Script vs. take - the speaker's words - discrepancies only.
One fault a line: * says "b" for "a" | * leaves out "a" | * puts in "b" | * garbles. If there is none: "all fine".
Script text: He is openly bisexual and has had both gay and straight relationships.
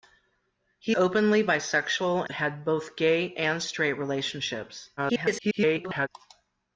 * leaves out "is"
* leaves out "and has"
* garbles